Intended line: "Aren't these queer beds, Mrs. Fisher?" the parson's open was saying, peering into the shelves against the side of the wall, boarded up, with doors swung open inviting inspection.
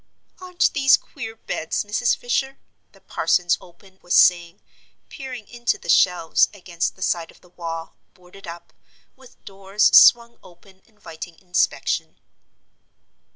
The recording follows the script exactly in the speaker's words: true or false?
true